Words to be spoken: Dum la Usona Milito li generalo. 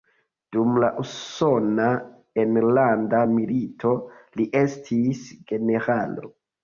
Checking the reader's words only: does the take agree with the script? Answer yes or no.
no